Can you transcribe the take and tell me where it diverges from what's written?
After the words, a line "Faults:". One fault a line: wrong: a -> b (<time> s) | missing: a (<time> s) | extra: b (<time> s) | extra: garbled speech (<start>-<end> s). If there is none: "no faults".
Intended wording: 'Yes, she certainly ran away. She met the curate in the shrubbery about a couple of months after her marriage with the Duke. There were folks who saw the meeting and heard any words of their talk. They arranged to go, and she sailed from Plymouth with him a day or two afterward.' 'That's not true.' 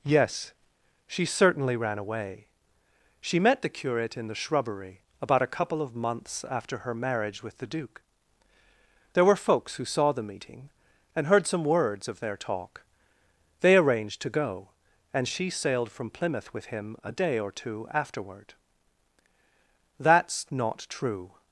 'Yes, she certainly ran away. She met the curate in the shrubbery about a couple of months after her marriage with the Duke. There were folks who saw the meeting and heard some words of their talk. They arranged to go, and she sailed from Plymouth with him a day or two afterward.' 'That's not true.'
Faults:
wrong: any -> some (11.5 s)